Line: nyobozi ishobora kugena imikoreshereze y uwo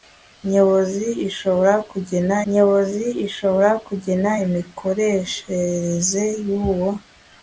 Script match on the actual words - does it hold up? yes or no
no